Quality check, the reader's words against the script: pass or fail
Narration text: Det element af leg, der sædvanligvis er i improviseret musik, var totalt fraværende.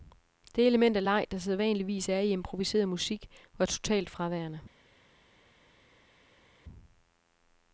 pass